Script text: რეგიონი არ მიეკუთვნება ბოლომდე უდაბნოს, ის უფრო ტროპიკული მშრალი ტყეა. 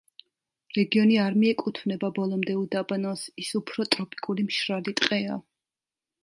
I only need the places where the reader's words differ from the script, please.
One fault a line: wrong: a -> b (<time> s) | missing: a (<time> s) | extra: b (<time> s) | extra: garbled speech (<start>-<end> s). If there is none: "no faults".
no faults